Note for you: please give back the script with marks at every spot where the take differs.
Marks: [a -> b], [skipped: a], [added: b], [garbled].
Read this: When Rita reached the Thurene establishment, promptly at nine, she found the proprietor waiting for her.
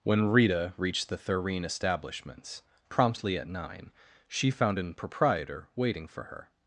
When Rita reached the Thurene [establishment, -> establishments] promptly at nine, she found [the -> an] proprietor waiting for her.